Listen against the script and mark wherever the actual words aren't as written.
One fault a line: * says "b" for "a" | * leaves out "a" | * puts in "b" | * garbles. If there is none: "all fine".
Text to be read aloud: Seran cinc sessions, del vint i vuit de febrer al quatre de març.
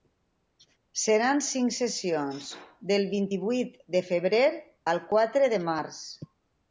all fine